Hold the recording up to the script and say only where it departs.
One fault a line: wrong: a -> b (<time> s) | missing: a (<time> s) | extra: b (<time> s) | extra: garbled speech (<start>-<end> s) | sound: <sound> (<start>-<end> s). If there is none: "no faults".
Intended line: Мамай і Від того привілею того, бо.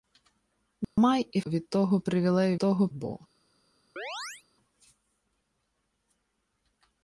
sound: dropout (0.8-1.0 s)
sound: chirp (4.0-4.4 s)